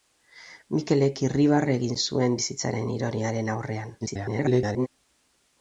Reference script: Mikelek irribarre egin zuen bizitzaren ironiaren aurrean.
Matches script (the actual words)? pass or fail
fail